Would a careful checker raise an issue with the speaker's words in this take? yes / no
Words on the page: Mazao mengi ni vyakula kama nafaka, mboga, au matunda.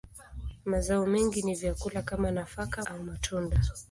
yes